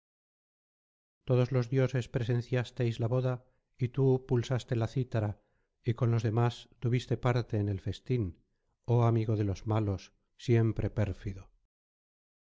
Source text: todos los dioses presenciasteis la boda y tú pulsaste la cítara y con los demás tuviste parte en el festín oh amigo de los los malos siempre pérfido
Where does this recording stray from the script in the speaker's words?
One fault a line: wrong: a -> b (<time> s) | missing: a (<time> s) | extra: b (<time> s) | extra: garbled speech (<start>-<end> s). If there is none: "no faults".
missing: los (9.7 s)